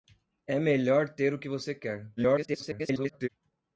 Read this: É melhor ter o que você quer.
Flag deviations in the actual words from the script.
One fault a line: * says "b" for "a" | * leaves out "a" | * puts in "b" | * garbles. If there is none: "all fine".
* garbles